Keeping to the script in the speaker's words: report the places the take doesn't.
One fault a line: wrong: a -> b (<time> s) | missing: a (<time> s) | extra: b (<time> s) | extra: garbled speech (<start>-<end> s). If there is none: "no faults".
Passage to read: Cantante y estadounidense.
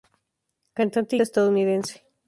no faults